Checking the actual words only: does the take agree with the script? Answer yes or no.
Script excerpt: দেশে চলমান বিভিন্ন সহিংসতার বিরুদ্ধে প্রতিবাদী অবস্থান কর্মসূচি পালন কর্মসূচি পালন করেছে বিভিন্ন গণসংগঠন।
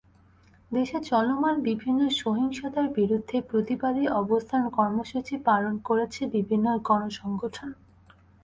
no